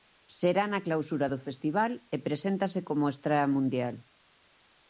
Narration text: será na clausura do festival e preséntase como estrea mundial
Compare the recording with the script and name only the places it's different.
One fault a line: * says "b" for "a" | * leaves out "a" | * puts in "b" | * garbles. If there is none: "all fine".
all fine